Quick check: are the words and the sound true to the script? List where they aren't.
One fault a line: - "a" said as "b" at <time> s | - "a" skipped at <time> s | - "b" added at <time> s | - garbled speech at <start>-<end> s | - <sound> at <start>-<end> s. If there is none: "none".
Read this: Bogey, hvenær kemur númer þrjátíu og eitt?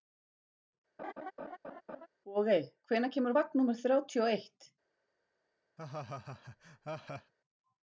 - laugh at 1.0-2.1 s
- "vagn" added at 3.3 s
- laugh at 5.8-7.3 s